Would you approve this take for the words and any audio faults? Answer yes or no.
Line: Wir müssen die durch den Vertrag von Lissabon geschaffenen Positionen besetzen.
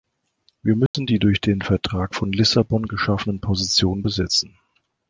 no